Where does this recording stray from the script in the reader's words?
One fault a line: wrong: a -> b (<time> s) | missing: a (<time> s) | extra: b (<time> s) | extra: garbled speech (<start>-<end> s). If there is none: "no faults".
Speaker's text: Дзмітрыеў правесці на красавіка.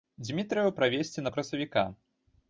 no faults